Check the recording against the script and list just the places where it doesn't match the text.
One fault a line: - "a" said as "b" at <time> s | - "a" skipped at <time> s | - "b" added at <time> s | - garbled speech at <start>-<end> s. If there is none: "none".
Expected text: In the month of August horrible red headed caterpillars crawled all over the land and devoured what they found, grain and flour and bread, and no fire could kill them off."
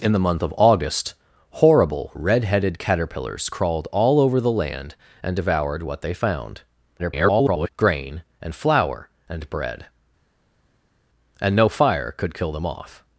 - garbled speech at 7.0-7.7 s